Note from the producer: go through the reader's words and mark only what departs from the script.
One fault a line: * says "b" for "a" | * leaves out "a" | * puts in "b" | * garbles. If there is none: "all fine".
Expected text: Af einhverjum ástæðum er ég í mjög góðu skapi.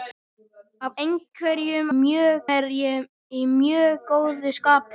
* says "mjög" for "ástæðum"